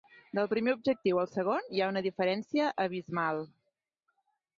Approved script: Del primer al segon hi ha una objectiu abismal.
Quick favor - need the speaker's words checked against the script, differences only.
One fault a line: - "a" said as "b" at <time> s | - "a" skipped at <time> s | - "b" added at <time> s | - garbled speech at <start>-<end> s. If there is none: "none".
- "objectiu" added at 0.8 s
- "objectiu" said as "diferència" at 2.1 s